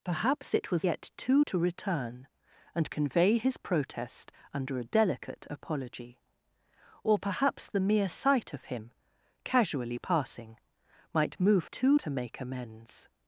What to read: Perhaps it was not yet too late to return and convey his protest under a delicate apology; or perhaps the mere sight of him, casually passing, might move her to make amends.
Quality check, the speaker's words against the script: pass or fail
fail